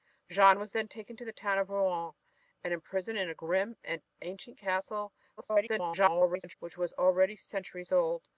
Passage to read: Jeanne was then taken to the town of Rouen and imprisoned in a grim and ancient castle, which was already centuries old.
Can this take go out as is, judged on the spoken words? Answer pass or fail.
fail